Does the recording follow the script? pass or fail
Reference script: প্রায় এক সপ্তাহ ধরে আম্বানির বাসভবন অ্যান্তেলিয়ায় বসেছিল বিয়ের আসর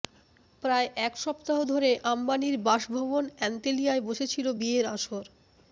pass